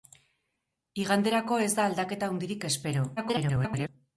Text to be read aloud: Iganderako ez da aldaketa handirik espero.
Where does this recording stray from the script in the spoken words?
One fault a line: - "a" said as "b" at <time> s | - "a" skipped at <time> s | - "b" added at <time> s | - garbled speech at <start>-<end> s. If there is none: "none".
- garbled speech at 3.2-3.9 s